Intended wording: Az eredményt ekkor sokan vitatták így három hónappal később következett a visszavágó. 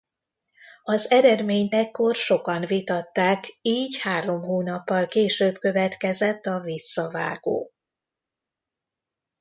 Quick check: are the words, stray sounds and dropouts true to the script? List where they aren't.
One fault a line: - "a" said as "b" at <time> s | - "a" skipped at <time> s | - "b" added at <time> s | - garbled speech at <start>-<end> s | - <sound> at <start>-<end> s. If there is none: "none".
none